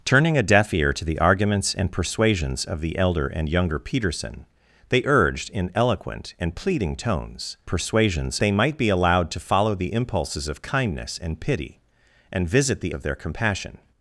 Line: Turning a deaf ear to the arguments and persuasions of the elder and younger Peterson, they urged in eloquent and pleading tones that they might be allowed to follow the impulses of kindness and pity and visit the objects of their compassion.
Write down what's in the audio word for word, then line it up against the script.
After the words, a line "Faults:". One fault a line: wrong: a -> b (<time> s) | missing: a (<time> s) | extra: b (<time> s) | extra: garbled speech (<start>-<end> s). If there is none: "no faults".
Turning a deaf ear to the arguments and persuasions of the elder and younger Peterson, they urged in eloquent and pleading tones persuasions they might be allowed to follow the impulses of kindness and pity and visit the of their compassion.
Faults:
wrong: that -> persuasions (7.7 s)
missing: objects (12.9 s)